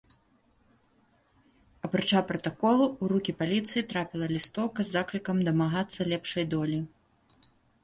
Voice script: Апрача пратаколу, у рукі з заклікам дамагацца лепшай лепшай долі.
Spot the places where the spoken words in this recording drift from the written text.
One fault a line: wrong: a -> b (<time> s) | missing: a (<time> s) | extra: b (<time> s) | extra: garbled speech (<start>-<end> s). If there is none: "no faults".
extra: паліцыі трапіла лістоўка (3.4 s)
missing: лепшай (6.5 s)